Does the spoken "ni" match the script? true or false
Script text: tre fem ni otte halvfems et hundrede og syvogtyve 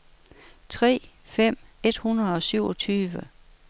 false